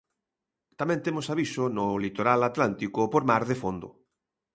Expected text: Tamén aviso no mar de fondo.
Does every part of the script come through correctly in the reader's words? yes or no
no